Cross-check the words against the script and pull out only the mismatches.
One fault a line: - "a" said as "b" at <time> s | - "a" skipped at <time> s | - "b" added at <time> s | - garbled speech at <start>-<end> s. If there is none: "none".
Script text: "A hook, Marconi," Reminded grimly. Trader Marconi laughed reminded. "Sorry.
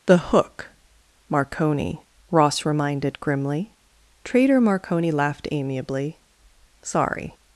- "A" said as "The" at 0.1 s
- "Ross" added at 2.3 s
- "reminded" said as "amiably" at 5.5 s